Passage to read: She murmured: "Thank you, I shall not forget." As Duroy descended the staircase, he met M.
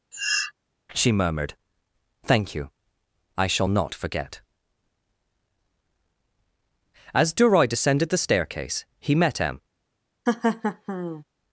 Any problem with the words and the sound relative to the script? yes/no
yes